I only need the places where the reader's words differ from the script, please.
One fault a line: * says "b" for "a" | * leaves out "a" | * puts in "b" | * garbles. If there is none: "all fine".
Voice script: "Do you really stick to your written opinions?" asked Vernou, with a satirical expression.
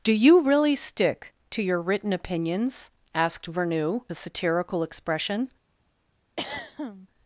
* leaves out "with"